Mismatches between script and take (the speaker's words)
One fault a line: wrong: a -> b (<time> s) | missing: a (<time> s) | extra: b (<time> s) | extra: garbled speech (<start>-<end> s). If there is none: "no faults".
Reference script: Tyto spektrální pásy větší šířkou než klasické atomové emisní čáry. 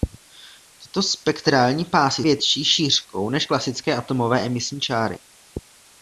no faults